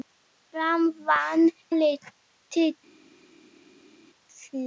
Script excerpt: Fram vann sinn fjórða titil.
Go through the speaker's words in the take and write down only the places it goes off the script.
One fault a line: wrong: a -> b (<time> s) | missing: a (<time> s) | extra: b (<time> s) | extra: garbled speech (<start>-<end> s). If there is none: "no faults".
missing: sinn fjórða (1.4 s)